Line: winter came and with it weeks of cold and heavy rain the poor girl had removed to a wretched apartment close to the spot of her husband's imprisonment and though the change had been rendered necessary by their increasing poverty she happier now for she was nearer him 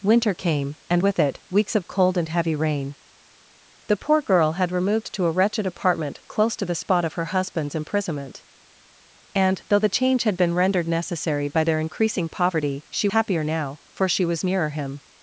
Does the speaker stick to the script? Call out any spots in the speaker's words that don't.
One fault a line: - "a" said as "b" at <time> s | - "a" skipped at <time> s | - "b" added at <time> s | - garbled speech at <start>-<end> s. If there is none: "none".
none